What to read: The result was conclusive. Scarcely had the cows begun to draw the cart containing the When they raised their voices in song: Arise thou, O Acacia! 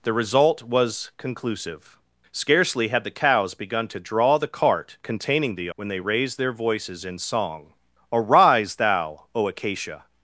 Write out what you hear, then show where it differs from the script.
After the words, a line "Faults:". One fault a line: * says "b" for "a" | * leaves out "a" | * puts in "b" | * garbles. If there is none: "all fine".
The result was conclusive. Scarcely had the cows begun to draw the cart containing the When they raised their voices in song: Arise thou, O Acacia!
Faults:
all fine